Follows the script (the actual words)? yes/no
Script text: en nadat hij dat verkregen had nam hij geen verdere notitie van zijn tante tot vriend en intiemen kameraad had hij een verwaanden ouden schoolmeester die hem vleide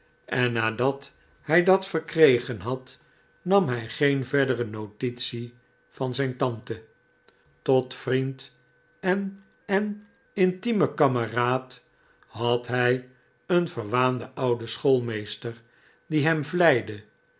no